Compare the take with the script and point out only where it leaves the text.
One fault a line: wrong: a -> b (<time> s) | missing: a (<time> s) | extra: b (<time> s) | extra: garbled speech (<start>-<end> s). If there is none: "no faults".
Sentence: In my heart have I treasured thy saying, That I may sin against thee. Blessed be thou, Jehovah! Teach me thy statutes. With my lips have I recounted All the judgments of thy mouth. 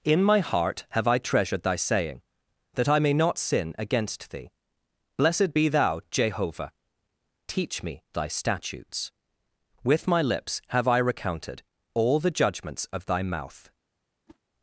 extra: not (3.1 s)